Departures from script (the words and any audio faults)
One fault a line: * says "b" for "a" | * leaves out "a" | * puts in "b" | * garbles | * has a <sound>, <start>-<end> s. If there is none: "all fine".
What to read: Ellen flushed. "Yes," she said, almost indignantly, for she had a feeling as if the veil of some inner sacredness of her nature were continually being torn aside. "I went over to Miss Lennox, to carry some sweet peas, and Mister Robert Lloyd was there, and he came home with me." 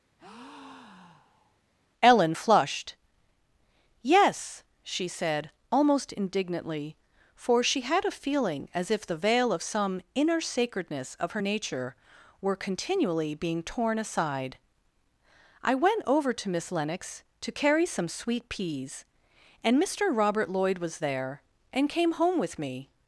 * has a breath, 0.2-1.6 s
* leaves out "he"